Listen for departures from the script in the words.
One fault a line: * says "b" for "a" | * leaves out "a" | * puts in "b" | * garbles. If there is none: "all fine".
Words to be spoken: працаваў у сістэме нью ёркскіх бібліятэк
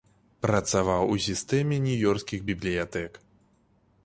all fine